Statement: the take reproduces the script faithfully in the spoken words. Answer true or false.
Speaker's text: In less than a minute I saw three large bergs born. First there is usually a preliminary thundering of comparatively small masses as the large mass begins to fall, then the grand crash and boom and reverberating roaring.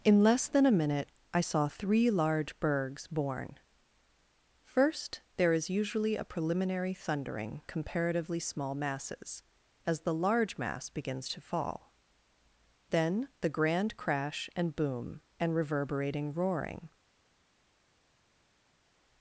false